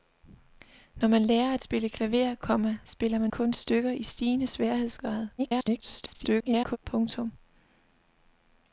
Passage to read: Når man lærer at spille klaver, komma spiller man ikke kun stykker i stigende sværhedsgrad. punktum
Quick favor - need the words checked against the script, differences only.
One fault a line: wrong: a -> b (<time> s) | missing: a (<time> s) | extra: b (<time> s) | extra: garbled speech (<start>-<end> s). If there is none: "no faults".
missing: ikke (3.3 s)
extra: garbled speech (5.4-6.8 s)